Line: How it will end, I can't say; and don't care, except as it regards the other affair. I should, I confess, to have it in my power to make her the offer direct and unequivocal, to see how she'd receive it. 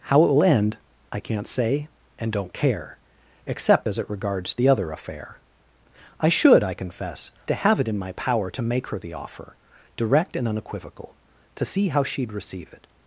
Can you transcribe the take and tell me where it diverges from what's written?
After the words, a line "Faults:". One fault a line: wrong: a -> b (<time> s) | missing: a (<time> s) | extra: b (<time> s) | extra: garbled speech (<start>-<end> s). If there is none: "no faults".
How it will end, I can't say; and don't care, except as it regards the other affair. I should, I confess, to have it in my power to make her the offer direct and unequivocal, to see how she'd receive it.
Faults:
no faults